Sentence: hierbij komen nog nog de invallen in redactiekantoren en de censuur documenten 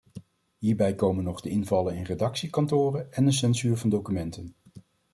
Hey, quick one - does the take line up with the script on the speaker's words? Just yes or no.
no